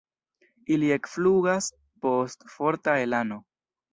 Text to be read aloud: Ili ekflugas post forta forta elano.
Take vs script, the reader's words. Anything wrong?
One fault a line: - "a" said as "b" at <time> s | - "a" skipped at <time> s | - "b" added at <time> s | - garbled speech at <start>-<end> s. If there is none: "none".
- "forta" skipped at 3.0 s